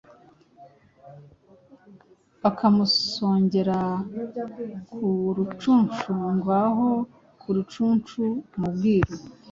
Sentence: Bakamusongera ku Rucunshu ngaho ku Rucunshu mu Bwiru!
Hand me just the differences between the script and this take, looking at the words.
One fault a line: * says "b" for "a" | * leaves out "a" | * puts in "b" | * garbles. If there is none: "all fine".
all fine